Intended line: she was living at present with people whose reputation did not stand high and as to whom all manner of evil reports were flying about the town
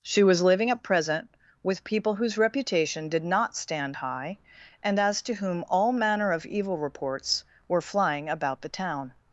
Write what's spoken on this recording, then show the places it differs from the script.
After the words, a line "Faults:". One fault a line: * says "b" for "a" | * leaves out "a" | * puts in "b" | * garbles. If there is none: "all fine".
she was living at present with people whose reputation did not stand high and as to whom all manner of evil reports were flying about the town
Faults:
all fine